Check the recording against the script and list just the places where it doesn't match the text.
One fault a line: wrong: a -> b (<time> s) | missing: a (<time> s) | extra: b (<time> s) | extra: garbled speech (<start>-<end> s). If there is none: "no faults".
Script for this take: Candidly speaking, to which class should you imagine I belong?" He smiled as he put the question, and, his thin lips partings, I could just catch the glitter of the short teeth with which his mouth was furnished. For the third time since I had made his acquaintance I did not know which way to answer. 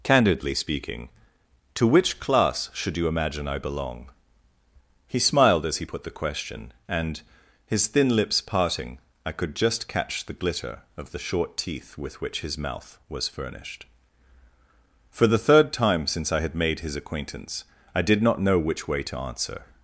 wrong: partings -> parting (8.4 s)